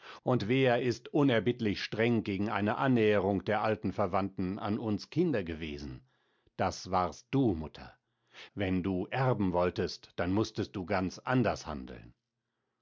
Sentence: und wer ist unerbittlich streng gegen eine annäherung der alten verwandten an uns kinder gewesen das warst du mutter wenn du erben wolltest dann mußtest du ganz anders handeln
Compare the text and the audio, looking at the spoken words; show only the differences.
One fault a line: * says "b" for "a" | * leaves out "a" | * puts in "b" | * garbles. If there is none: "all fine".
all fine